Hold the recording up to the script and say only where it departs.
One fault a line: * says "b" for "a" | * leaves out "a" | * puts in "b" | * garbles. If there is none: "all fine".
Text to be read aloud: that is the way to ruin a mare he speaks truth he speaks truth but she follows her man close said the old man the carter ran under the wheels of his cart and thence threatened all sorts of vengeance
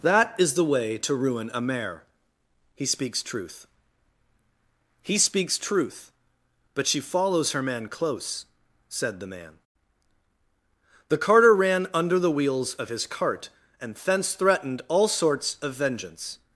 * leaves out "old"